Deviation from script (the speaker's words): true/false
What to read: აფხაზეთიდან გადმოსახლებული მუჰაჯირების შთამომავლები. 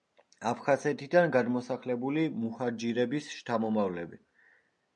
false